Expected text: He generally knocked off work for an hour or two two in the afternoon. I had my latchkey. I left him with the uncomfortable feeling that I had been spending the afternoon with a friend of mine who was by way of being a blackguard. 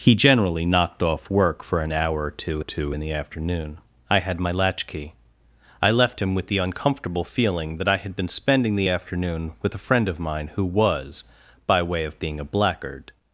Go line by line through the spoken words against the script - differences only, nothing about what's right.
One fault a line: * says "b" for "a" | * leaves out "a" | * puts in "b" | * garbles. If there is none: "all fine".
all fine